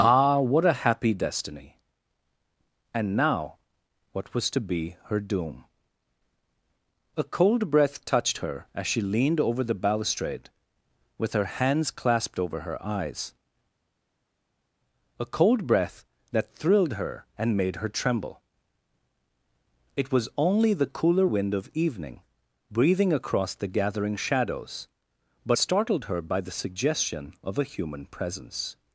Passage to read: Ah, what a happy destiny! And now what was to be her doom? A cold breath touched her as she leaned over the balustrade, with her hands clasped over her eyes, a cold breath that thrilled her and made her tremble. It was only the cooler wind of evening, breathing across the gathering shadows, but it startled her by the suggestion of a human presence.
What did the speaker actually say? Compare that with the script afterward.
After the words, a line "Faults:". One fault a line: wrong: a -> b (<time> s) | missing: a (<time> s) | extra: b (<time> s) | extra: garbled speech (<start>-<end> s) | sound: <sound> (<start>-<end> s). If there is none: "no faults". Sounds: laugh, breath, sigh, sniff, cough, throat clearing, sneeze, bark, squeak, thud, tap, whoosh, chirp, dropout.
Ah, what a happy destiny! And now what was to be her doom? A cold breath touched her as she leaned over the balustrade, with her hands clasped over her eyes, a cold breath that thrilled her and made her tremble. It was only the cooler wind of evening, breathing across the gathering shadows, but startled her by the suggestion of a human presence.
Faults:
missing: it (25.6 s)